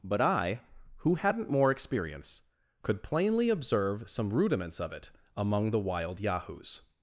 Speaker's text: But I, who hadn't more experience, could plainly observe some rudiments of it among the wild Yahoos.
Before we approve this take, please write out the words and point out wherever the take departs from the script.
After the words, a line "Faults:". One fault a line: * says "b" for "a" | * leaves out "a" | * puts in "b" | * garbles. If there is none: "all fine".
But I, who hadn't more experience, could plainly observe some rudiments of it among the wild Yahoos.
Faults:
all fine